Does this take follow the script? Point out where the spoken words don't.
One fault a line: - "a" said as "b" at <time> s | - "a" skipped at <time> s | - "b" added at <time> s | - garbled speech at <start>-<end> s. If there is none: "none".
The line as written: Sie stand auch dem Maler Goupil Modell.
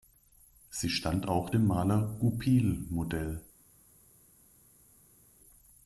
none